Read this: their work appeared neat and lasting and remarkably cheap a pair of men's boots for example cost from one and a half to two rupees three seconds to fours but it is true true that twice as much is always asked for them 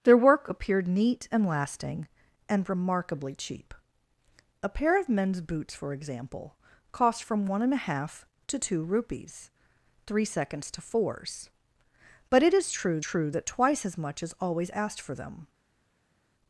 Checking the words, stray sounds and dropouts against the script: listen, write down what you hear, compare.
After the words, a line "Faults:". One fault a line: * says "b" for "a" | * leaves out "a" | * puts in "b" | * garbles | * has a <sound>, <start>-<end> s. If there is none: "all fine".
their work appeared neat and lasting and remarkably cheap a pair of men's boots for example cost from one and a half to two rupees three seconds to fours but it is true true that twice as much is always asked for them
Faults:
all fine